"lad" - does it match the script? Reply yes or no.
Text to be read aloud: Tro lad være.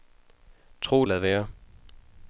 yes